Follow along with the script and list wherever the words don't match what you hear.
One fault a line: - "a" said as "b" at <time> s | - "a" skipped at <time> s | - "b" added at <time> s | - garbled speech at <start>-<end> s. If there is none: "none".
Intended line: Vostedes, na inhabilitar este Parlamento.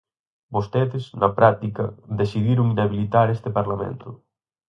- "práctica decidiron" added at 1.4 s